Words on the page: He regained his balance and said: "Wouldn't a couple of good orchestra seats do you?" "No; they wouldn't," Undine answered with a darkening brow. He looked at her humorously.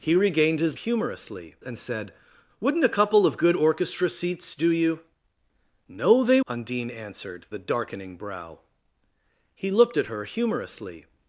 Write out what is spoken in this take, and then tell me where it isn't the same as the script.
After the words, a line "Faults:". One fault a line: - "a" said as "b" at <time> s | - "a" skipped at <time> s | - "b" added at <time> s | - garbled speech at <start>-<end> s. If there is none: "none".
He regained his humorously and said: "Wouldn't a couple of good orchestra seats do you?" "No; they," Undine answered a darkening brow. He looked at her humorously.
Faults:
- "balance" said as "humorously" at 0.7 s
- "wouldn't" skipped at 6.4 s
- "with" skipped at 7.5 s